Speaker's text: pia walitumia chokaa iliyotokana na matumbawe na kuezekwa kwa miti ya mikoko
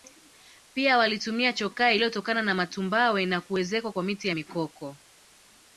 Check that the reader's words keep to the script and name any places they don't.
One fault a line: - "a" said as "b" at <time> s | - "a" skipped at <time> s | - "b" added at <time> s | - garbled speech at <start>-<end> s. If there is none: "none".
none